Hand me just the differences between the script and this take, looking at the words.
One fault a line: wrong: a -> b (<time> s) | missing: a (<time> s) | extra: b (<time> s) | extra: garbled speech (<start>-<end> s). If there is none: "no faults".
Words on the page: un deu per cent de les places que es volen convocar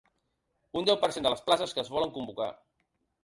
no faults